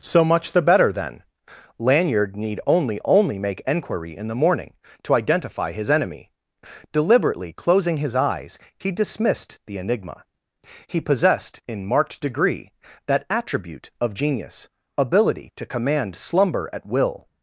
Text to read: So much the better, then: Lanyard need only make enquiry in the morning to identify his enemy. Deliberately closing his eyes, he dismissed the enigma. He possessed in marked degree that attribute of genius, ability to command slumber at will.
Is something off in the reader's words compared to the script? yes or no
yes